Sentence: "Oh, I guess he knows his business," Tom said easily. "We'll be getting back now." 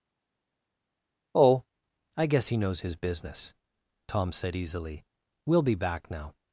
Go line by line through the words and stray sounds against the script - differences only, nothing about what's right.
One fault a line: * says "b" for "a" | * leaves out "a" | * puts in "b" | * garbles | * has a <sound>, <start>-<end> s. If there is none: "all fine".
* leaves out "getting"